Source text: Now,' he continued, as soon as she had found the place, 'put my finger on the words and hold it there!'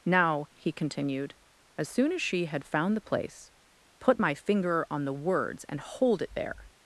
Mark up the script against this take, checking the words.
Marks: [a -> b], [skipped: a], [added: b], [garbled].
Now,' he continued, as soon as she had found the place, 'put my finger on the words and hold it there!'